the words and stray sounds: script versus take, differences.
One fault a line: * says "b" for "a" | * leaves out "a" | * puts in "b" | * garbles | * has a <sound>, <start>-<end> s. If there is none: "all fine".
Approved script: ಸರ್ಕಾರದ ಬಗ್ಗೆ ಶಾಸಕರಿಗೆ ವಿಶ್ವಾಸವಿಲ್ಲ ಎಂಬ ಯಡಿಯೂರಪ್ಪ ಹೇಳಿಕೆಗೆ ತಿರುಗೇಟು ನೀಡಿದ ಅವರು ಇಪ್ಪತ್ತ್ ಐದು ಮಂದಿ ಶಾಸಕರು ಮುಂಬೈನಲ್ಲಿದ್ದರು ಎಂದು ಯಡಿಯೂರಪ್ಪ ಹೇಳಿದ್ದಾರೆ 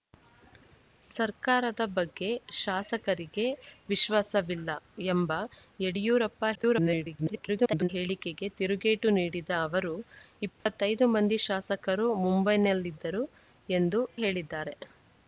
* garbles
* has a dropout, 10.6-10.7 s
* leaves out "ಯಡಿಯೂರಪ್ಪ"